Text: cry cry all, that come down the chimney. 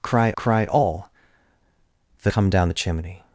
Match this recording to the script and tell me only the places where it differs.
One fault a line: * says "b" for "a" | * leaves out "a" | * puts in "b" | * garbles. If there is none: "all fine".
all fine